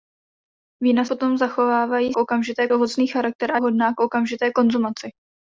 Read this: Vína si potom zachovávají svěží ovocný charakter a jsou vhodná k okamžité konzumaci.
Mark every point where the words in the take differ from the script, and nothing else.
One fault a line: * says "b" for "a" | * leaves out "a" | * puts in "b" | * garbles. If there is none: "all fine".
* leaves out "si"
* says "okamžité" for "svěží"
* leaves out "jsou"